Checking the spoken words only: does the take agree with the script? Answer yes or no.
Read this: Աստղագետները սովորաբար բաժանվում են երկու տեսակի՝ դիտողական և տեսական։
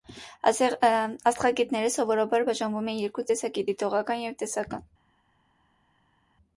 yes